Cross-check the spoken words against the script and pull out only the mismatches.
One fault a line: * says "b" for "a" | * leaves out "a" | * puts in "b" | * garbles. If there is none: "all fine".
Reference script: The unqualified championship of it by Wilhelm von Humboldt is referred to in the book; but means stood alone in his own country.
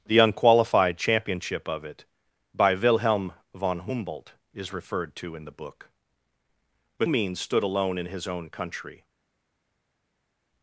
all fine